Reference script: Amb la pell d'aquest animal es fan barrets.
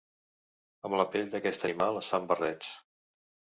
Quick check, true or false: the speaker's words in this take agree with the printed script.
true